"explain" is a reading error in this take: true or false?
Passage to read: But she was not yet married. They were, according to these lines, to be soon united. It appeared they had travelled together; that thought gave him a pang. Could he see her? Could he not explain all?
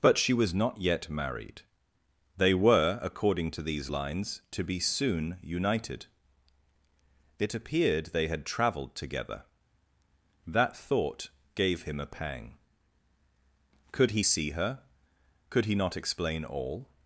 false